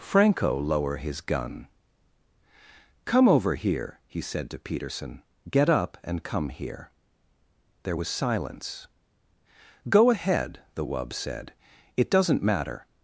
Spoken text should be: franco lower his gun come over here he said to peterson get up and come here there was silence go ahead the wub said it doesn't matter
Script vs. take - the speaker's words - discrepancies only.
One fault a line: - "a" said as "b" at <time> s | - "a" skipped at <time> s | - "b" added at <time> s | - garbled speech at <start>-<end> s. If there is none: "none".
none